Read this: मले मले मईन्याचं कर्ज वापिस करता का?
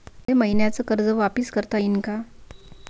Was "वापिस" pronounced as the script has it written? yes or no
yes